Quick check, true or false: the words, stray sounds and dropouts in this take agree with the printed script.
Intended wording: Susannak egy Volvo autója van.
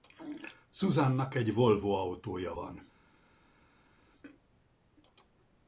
true